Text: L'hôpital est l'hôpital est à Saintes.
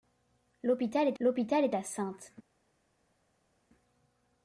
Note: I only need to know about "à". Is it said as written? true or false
true